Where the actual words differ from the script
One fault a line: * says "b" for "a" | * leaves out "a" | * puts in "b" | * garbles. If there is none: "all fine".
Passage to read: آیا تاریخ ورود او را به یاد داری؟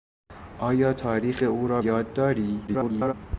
* leaves out "ورود"
* leaves out "به"
* garbles